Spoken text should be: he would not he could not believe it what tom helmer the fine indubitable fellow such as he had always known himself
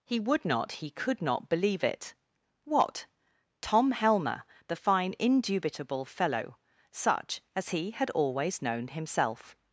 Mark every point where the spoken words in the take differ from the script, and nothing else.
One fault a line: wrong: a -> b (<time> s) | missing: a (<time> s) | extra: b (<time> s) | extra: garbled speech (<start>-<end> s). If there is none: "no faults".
no faults